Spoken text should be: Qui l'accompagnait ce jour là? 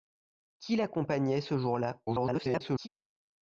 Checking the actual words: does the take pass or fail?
fail